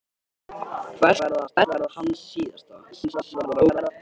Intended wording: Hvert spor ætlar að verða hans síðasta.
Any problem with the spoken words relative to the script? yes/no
yes